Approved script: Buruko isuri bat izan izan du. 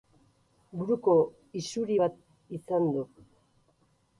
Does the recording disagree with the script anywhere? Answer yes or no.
yes